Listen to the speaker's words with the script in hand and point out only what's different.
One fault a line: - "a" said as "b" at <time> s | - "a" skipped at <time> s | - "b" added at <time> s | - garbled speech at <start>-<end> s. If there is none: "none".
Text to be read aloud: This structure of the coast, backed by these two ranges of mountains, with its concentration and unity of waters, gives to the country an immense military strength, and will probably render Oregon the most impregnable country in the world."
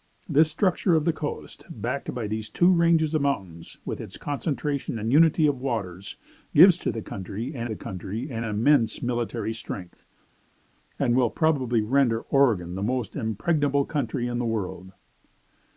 - "the country an" added at 7.6 s